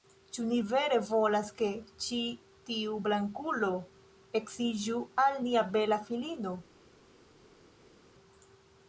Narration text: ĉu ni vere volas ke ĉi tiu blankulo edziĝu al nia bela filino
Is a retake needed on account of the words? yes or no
no